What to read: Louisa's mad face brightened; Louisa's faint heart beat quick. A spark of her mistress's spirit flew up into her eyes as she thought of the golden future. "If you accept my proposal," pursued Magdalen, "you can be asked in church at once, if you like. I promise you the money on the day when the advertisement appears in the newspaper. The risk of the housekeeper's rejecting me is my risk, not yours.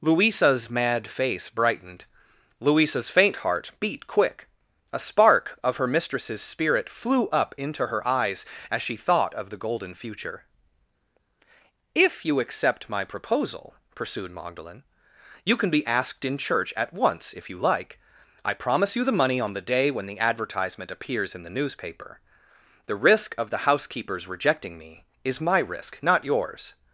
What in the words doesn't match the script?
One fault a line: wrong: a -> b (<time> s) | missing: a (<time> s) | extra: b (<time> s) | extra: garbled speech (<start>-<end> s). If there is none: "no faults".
no faults